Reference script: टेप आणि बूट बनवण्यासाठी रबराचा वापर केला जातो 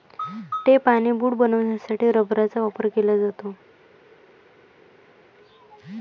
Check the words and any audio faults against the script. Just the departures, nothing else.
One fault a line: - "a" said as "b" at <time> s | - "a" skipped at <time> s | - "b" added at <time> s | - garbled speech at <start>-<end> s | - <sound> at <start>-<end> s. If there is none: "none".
none